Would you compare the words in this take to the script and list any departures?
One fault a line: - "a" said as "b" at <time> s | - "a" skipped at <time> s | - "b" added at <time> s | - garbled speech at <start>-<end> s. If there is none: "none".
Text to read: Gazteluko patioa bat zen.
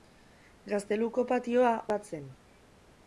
none